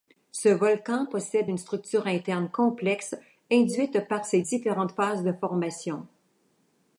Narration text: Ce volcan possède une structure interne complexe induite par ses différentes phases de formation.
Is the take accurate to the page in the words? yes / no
yes